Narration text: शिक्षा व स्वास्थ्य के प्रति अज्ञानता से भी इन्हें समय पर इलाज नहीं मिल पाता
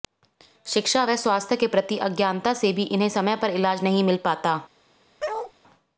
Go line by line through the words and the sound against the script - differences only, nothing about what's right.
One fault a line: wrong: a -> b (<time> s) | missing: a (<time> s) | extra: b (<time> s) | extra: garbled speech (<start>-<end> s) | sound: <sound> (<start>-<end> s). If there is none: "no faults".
sound: bark (5.2-5.5 s)